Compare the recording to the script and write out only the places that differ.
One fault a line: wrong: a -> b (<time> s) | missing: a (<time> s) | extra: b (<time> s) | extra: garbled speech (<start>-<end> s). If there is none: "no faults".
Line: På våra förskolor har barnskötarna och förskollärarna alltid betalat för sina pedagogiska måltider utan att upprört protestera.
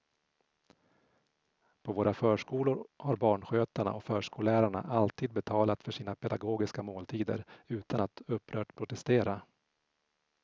no faults